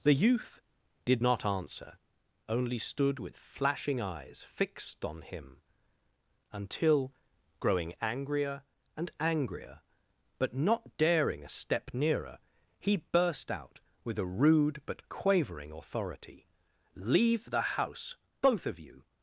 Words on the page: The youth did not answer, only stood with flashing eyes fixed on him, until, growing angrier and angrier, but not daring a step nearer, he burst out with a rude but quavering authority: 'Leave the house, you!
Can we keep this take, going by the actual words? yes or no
no